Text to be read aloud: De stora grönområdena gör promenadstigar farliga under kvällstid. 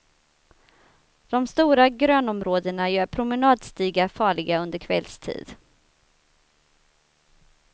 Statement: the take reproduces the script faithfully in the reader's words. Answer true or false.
true